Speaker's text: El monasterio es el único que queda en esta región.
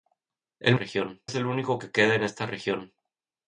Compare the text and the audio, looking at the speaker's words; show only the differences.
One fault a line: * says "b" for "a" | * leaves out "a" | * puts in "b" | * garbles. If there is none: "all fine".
* says "región" for "monasterio"